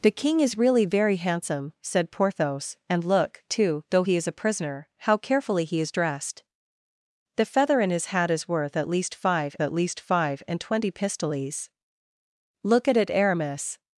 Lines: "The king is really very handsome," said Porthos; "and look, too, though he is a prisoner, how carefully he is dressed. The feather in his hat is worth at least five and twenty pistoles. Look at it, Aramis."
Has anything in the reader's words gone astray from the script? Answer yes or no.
yes